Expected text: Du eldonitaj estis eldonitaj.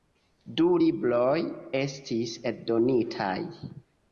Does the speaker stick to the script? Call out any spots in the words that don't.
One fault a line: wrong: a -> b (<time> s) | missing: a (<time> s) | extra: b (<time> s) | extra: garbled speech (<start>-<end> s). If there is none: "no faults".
wrong: eldonitaj -> libroj (0.8 s)